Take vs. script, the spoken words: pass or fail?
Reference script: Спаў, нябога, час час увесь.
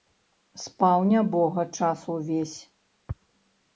fail